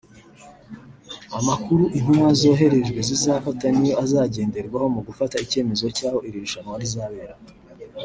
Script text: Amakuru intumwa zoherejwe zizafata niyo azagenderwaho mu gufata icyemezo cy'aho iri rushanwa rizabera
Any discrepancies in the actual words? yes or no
no